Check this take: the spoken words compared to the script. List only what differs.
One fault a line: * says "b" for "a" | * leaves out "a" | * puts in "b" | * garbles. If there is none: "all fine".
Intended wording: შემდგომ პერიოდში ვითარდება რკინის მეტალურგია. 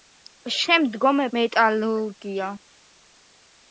* leaves out "პერიოდში ვითარდება რკინის"